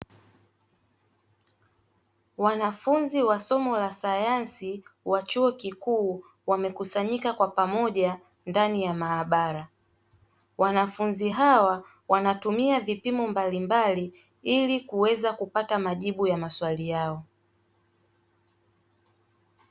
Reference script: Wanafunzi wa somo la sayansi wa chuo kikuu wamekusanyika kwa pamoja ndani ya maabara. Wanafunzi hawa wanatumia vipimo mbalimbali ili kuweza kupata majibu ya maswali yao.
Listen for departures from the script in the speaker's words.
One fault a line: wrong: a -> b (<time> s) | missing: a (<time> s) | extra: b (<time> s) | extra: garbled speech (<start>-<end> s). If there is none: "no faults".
no faults